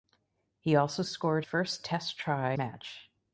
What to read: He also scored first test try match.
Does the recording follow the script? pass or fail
pass